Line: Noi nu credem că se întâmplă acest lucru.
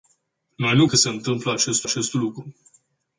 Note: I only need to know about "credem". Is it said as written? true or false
false